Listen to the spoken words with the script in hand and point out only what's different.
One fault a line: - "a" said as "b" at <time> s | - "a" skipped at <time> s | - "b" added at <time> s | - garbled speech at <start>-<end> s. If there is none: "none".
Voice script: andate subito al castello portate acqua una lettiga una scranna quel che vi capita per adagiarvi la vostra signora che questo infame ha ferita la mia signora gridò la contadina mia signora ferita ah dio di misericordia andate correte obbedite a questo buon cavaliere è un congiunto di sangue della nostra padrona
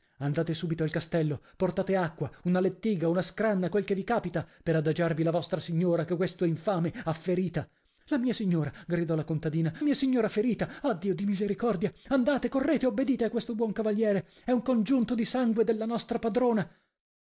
none